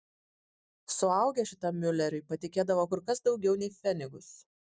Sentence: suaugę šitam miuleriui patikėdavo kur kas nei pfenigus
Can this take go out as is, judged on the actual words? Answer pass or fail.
fail